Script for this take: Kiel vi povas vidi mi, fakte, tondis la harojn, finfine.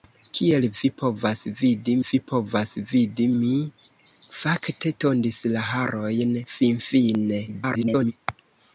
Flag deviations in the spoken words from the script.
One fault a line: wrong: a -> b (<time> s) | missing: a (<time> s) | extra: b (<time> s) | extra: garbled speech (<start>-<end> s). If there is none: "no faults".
extra: vi povas vidi (2.1 s)
extra: garbled speech (7.5-8.1 s)